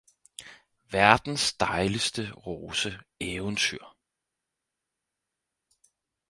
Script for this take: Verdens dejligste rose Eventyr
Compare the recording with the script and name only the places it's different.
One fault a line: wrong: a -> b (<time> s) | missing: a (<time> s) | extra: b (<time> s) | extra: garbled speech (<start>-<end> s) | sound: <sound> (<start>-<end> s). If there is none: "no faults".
no faults